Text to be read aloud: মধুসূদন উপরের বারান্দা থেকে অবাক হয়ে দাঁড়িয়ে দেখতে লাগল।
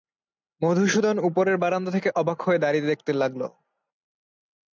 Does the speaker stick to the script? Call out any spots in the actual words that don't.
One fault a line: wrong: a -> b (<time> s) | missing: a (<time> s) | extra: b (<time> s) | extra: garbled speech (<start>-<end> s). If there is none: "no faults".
no faults